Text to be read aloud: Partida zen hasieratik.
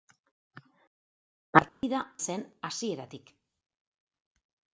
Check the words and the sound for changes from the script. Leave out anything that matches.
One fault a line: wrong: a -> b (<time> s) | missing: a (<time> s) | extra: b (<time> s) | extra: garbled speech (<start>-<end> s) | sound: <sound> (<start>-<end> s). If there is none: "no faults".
sound: dropout (1.7-1.8 s)